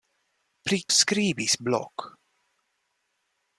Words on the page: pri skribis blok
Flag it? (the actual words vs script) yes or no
no